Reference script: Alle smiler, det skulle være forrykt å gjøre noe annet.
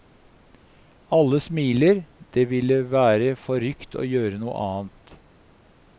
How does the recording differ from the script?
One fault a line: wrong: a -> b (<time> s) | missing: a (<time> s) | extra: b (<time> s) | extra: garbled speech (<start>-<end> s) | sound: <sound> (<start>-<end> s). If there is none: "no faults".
wrong: skulle -> ville (2.5 s)